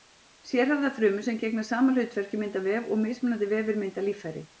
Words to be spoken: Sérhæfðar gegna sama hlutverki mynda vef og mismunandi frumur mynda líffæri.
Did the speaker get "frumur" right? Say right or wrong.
wrong